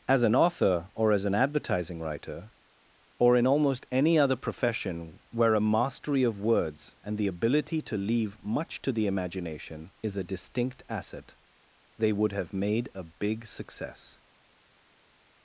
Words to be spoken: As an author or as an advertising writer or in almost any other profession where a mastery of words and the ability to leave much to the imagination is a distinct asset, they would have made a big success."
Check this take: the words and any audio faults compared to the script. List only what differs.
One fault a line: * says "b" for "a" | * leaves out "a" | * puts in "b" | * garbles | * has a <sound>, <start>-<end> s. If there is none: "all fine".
all fine